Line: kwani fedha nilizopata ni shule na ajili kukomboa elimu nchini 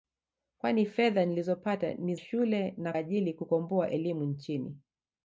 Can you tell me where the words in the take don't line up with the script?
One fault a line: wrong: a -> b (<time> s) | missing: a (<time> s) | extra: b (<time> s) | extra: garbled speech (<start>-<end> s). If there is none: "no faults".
no faults